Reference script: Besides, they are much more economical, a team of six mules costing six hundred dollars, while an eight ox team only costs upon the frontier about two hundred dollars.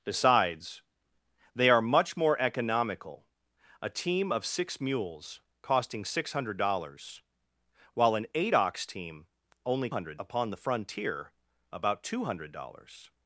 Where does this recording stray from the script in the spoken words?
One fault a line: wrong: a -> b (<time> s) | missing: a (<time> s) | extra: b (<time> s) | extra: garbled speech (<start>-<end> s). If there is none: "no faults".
wrong: costs -> hundred (9.9 s)